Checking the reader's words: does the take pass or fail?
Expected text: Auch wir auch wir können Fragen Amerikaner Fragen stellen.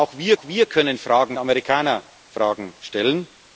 pass